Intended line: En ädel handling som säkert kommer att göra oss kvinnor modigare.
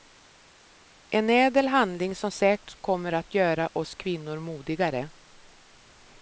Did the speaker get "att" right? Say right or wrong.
right